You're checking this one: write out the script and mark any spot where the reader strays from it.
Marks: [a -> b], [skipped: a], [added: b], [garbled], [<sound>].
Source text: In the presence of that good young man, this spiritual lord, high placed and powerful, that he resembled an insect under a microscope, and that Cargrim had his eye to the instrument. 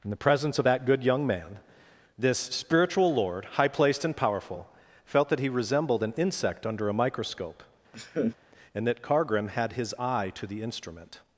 In the presence of that good young man, this spiritual lord, high placed and powerful, [added: felt] that he resembled an insect under a microscope, [laugh] and that Cargrim had his eye to the instrument.